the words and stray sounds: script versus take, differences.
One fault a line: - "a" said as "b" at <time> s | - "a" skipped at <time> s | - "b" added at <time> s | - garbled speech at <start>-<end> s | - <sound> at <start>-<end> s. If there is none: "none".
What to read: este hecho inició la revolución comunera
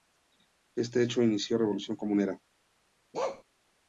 - bark at 3.1-3.4 s